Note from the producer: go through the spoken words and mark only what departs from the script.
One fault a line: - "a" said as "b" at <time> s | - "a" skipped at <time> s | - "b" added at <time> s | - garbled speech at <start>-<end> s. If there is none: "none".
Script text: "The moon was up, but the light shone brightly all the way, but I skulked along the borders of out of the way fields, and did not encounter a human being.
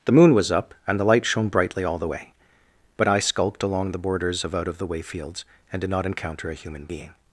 - "but" said as "and" at 0.9 s